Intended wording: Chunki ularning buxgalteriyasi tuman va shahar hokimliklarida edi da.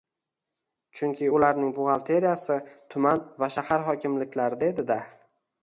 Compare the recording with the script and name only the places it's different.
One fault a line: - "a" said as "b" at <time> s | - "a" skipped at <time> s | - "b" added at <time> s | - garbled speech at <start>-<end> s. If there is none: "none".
none